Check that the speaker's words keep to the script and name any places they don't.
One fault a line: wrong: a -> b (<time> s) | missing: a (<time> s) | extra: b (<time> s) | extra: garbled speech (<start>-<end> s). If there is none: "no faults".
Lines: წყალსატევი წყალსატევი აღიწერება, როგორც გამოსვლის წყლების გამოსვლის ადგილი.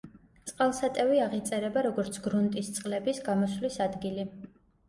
missing: წყალსატევი (1.2 s)
wrong: გამოსვლის -> გრუნტის (2.3 s)